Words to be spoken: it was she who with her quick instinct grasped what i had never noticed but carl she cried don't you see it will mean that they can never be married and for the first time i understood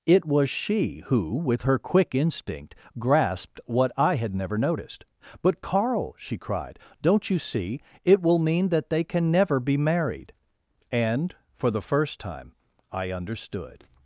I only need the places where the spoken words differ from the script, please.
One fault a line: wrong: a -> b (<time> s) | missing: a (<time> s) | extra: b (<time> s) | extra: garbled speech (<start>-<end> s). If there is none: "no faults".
no faults